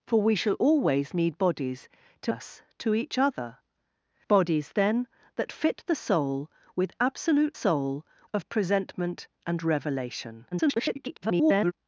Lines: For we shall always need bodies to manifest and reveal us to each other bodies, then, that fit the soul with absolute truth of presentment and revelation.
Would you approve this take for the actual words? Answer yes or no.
no